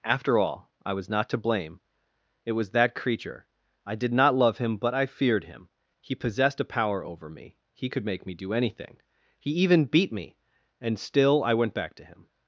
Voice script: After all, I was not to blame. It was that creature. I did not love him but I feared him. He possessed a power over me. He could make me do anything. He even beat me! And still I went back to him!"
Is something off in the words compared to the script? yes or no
no